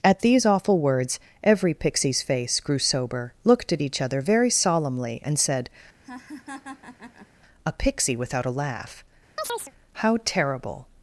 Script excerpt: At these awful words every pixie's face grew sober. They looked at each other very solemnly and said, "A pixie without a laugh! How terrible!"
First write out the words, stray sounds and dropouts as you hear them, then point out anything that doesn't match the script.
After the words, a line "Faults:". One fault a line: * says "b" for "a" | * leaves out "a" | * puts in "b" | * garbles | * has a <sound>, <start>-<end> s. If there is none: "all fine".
At these awful words every pixie's face grew sober. looked at each other very solemnly and said, "A pixie without a laugh! How terrible!"
Faults:
* leaves out "They"
* has a laugh, 6.0-7.3 s
* has a chirp, 9.4-9.7 s